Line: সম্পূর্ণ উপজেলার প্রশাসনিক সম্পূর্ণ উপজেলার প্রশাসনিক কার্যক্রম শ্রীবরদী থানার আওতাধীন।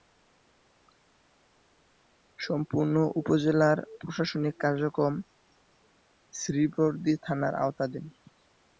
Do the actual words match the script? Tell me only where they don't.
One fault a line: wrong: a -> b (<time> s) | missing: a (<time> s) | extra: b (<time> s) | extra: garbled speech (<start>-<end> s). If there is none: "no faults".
missing: সম্পূর্ণ উপজেলার প্রশাসনিক (4.5 s)